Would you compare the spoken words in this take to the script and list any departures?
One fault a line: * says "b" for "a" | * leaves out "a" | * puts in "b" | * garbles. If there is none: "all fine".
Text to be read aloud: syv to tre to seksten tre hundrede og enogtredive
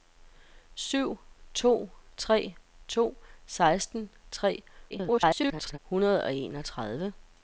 * garbles